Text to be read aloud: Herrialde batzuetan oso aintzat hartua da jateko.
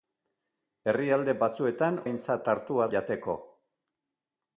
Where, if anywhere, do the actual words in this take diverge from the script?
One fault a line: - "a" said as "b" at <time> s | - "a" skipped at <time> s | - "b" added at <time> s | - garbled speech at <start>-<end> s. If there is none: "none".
- "oso" skipped at 2.0 s
- "da" skipped at 2.9 s